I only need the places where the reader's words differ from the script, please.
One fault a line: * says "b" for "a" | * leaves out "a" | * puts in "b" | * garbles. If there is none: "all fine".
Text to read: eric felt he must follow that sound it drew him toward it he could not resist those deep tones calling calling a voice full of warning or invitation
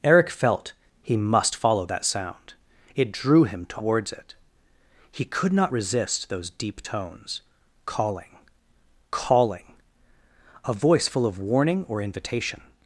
* says "towards" for "toward"